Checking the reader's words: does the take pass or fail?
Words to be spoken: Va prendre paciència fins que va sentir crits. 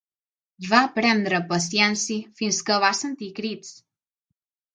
pass